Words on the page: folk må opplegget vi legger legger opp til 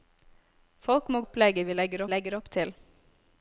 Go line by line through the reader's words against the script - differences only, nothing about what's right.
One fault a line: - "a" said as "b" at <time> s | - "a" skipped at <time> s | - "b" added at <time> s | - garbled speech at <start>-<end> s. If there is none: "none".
none